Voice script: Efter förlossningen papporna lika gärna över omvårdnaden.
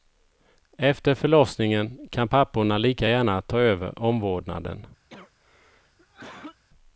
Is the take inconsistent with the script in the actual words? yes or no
yes